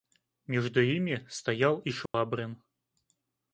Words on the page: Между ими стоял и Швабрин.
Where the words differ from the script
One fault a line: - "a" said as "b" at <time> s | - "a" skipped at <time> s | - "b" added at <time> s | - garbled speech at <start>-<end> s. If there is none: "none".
none